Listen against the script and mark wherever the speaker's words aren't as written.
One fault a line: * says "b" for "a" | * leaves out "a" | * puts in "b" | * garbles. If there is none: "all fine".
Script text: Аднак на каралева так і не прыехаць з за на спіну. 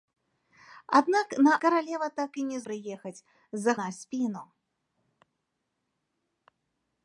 all fine